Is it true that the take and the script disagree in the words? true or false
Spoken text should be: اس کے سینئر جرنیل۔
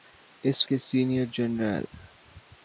false